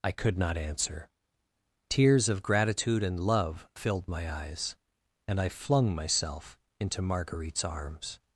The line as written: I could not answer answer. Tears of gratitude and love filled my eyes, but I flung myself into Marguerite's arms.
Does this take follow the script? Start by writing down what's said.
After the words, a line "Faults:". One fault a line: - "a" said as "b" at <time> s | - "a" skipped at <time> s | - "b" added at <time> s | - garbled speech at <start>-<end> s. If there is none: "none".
I could not answer. Tears of gratitude and love filled my eyes, and I flung myself into Marguerite's arms.
Faults:
- "answer" skipped at 1.1 s
- "but" said as "and" at 5.3 s